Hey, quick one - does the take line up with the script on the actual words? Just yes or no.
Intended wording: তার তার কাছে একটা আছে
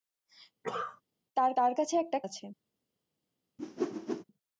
yes